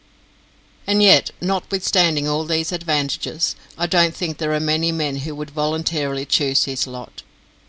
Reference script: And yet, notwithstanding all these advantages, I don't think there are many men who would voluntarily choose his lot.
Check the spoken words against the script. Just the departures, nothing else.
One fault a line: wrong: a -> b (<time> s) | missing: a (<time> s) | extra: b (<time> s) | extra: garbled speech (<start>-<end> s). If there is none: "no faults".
no faults